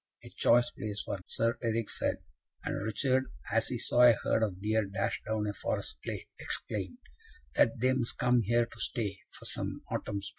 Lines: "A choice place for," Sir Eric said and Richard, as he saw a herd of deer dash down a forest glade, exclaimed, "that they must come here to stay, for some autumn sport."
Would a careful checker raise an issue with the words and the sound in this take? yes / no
no